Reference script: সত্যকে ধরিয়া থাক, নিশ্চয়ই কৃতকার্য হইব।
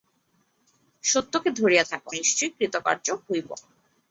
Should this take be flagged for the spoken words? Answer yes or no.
no